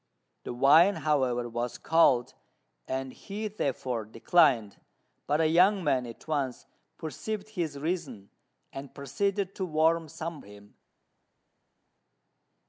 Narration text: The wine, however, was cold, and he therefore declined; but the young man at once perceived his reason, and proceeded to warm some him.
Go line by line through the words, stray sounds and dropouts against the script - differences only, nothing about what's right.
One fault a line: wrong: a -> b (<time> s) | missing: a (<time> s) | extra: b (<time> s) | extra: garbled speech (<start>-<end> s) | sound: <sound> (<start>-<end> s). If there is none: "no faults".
no faults